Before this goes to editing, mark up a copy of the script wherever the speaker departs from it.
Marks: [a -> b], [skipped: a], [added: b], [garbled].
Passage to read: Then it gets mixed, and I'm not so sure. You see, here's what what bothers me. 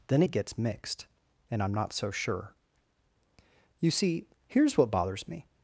Then it gets mixed, and I'm not so sure. You see, here's what [skipped: what] bothers me.